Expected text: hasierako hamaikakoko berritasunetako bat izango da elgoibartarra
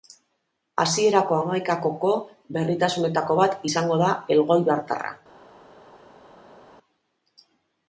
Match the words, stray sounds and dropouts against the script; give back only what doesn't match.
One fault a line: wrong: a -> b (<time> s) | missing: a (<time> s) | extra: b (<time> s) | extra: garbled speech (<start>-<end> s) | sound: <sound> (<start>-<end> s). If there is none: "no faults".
no faults